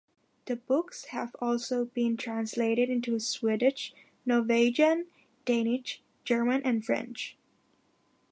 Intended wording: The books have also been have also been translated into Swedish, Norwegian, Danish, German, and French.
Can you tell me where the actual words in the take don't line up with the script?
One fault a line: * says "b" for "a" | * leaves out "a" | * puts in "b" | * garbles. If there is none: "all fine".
* leaves out "have also been"